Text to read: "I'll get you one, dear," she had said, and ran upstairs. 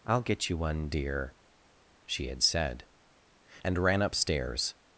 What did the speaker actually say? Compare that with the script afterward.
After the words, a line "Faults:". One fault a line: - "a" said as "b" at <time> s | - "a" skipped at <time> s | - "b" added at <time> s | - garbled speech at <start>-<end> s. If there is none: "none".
"I'll get you one, dear," she had said, and ran upstairs.
Faults:
none